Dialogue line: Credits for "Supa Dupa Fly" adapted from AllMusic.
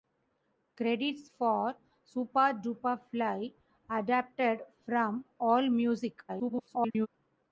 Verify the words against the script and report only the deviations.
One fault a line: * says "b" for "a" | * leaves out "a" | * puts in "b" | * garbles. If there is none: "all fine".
* garbles